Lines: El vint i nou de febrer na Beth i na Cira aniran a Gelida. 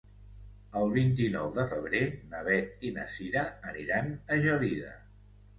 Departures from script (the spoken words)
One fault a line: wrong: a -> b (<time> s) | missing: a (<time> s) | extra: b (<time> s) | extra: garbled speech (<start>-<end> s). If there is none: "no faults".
no faults